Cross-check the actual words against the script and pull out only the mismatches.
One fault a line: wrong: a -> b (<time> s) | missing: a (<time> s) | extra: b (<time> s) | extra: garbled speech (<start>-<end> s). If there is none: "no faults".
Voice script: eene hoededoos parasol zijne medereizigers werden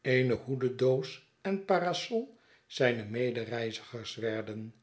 extra: en (1.4 s)